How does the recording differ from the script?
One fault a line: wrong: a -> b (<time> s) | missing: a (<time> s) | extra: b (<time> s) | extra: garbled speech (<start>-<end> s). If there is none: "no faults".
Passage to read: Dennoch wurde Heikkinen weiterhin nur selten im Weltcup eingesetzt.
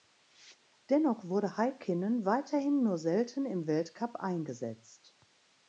no faults